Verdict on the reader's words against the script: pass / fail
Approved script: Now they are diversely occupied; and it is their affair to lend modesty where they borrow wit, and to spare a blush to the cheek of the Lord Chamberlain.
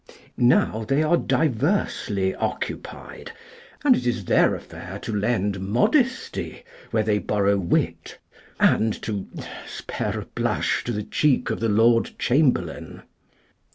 pass